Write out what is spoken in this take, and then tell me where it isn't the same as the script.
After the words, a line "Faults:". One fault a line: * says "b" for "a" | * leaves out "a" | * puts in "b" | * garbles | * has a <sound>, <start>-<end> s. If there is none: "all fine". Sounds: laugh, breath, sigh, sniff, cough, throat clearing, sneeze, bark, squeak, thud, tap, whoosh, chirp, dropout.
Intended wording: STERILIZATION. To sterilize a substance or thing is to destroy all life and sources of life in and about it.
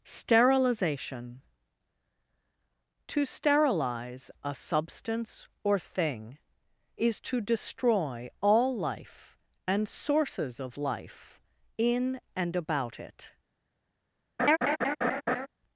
STERILIZATION. To sterilize a substance or thing is to destroy all life and sources of life in and about it.
Faults:
* has a laugh, 14.4-15.5 s